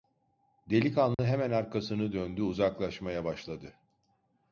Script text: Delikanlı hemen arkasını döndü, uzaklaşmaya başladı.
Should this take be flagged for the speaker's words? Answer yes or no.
no